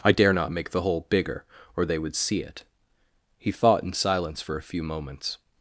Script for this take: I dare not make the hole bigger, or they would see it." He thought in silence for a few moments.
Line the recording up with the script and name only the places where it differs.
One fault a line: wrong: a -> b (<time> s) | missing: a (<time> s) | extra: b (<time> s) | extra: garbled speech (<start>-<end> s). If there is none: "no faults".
no faults